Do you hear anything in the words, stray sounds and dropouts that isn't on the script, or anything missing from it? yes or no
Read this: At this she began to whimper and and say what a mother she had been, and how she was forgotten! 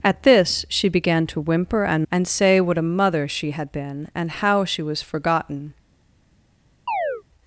yes